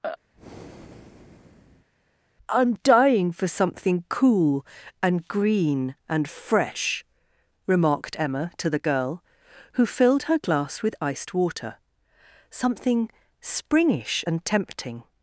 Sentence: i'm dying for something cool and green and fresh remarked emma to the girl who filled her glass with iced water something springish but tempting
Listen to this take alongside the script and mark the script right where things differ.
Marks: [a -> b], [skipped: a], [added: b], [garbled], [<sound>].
[breath] i'm dying for something cool and green and fresh remarked emma to the girl who filled her glass with iced water something springish [but -> and] tempting